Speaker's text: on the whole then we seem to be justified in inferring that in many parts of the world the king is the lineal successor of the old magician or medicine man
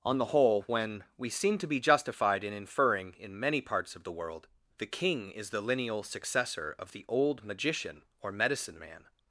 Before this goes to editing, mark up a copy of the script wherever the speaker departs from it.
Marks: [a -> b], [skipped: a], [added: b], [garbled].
on the whole [then -> when] we seem to be justified in inferring [skipped: that] in many parts of the world the king is the lineal successor of the old magician or medicine man